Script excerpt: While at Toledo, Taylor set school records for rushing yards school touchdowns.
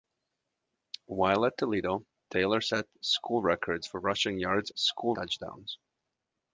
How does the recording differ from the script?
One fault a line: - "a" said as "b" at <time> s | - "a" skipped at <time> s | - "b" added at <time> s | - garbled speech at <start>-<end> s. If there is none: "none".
none